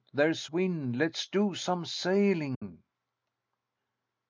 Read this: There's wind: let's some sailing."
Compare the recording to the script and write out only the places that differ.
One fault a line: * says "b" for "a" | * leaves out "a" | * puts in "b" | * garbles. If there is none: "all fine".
* puts in "do"